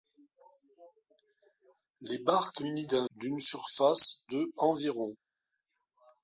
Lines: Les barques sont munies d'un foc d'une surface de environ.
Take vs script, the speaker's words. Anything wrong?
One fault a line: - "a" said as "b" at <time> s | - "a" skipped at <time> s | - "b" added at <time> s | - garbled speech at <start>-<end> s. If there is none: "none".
- "sont" skipped at 2.6 s
- "foc" skipped at 3.1 s